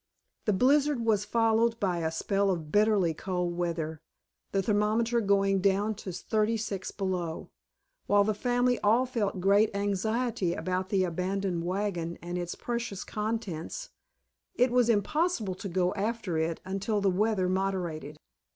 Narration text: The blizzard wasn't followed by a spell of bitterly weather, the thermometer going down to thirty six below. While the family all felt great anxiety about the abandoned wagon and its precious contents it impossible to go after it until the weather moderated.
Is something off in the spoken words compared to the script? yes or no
yes